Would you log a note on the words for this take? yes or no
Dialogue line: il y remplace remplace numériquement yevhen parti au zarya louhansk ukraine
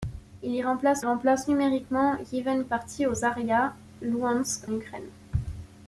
no